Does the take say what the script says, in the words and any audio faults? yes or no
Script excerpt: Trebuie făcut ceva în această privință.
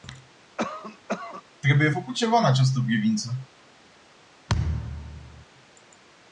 no